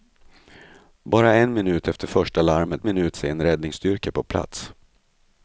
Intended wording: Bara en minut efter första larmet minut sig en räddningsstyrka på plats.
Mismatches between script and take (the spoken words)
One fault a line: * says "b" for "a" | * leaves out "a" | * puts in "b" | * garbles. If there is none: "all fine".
all fine